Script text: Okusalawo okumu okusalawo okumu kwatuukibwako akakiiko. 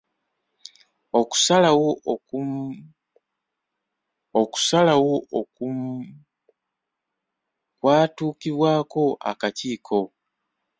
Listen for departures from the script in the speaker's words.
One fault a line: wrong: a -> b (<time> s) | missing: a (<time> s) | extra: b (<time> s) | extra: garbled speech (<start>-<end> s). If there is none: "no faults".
no faults